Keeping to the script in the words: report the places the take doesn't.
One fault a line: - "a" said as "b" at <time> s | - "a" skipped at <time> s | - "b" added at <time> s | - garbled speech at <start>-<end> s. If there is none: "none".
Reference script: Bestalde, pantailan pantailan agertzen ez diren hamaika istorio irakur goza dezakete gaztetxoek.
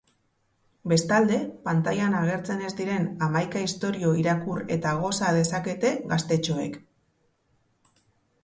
- "pantailan" skipped at 2.1 s
- "eta" added at 4.8 s